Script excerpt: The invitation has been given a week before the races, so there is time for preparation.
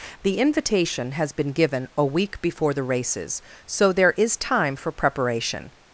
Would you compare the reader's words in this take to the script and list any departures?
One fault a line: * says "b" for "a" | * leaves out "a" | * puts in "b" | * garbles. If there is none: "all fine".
all fine